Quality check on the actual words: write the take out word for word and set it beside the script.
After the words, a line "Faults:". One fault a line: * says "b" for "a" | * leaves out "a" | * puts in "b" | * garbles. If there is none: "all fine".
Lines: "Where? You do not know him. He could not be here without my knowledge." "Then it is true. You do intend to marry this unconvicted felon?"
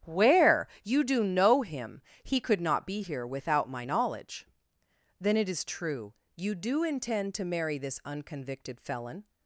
"Where? You do know him. He could not be here without my knowledge." "Then it is true. You do intend to marry this unconvicted felon?"
Faults:
* leaves out "not"